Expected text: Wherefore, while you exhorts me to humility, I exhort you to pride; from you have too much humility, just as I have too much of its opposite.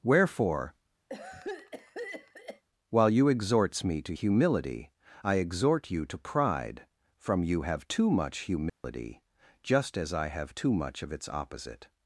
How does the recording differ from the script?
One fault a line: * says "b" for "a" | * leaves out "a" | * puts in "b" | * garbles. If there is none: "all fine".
all fine